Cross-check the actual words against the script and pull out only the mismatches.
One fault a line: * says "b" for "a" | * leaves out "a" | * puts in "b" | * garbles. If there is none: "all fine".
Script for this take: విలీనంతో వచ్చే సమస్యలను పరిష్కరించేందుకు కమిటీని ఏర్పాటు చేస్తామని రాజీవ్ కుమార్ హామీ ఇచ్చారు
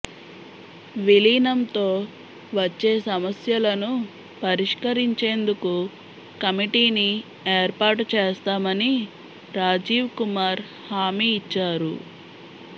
all fine